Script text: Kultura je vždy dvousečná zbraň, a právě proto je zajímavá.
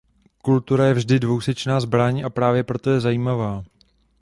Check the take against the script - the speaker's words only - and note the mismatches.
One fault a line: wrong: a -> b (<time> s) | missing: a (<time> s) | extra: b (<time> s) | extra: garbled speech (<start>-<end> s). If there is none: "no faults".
no faults